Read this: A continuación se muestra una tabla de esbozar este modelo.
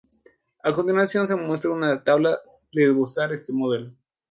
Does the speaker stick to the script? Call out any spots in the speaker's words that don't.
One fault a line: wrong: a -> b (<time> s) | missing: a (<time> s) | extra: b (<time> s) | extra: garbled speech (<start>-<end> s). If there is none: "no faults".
no faults